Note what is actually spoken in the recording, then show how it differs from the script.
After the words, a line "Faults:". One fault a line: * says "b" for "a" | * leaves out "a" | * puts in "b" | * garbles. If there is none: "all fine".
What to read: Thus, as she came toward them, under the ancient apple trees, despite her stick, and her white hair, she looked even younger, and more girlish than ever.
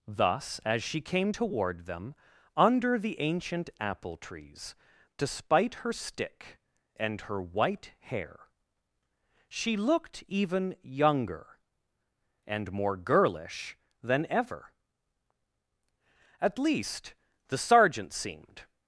Thus, as she came toward them, under the ancient apple trees, despite her stick, and her white hair, she looked even younger, and more girlish than ever. At least, the Sergeant seemed
Faults:
* puts in "At least the Sergeant seemed"